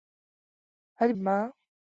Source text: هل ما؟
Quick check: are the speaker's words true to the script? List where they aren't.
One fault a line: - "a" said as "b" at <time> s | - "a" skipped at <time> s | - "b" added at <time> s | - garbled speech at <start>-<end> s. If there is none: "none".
none